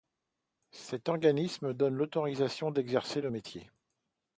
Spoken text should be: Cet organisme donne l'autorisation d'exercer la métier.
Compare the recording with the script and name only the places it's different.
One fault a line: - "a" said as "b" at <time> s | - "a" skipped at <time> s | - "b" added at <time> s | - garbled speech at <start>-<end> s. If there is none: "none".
- "la" said as "le" at 3.2 s